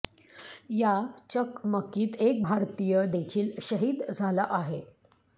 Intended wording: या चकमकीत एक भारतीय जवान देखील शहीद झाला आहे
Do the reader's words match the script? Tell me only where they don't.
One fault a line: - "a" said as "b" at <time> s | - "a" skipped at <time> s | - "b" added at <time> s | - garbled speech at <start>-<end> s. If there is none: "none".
- "जवान" skipped at 3.0 s